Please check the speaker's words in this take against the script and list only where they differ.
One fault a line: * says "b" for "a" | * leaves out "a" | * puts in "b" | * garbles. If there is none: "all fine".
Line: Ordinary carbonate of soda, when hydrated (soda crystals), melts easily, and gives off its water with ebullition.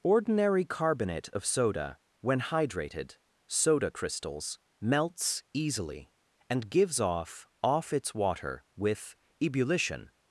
* puts in "off"